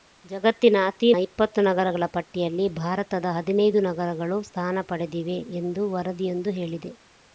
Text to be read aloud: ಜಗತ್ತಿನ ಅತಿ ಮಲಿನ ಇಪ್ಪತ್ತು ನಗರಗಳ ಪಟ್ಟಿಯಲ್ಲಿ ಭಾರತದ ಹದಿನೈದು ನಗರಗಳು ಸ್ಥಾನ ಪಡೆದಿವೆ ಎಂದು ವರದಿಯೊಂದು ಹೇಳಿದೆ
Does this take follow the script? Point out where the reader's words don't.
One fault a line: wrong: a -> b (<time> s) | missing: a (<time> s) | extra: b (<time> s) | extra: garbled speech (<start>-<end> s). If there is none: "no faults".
missing: ಮಲಿನ (1.1 s)